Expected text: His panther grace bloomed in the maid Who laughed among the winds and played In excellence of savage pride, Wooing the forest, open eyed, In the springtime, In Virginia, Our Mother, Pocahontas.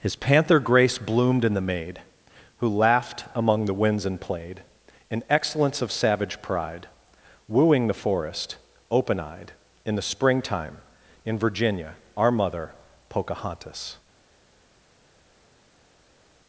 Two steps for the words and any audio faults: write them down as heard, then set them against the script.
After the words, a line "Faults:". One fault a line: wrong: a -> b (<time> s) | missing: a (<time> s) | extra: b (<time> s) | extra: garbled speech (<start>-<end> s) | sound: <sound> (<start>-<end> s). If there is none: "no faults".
His panther grace bloomed in the maid Who laughed among the winds and played In excellence of savage pride, Wooing the forest, open eyed, In the springtime, In Virginia, Our Mother, Pocahontas.
Faults:
no faults